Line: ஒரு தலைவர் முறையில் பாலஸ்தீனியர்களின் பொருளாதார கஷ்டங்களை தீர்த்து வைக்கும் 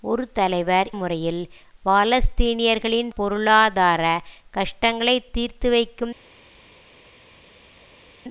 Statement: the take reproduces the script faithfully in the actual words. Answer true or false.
true